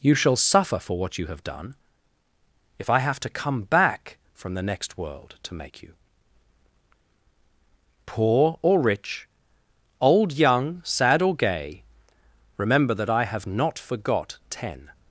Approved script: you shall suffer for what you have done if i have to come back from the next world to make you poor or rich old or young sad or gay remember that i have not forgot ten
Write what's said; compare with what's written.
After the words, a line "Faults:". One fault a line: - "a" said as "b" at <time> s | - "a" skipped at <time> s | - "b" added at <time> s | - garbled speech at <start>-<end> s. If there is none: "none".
you shall suffer for what you have done if i have to come back from the next world to make you poor or rich old young sad or gay remember that i have not forgot ten
Faults:
- "or" skipped at 10.3 s